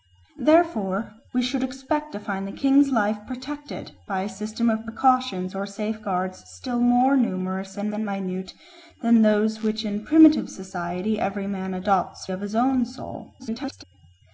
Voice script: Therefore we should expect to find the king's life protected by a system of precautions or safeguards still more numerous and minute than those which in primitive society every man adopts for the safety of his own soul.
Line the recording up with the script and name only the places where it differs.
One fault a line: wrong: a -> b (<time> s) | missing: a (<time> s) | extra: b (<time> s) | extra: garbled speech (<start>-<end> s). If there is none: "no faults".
extra: and (7.9 s)
missing: for the safety (12.3 s)
extra: garbled speech (13.4-13.8 s)